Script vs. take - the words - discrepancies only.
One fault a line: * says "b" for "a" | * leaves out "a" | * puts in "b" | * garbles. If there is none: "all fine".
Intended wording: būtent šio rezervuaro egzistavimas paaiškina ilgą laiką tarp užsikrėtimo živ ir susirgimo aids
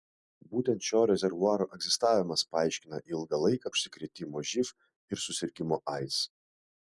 * leaves out "tarp"